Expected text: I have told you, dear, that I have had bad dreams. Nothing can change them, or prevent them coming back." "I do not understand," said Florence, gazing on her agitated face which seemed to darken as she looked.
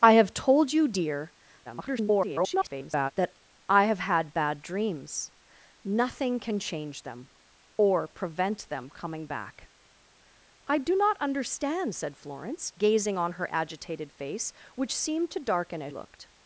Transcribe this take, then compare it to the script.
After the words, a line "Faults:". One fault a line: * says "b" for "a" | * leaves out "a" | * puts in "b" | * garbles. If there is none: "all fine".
I have told you, dear, [garbled] that I have had bad dreams. Nothing can change them, or prevent them coming back." "I do not understand," said Florence, gazing on her agitated face which seemed to darken as looked.
Faults:
* garbles
* leaves out "she"